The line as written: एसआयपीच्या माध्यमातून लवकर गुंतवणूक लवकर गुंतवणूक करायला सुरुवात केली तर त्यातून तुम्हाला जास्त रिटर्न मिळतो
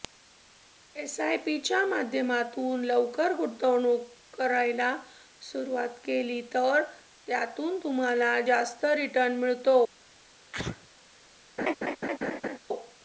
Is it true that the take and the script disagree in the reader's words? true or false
true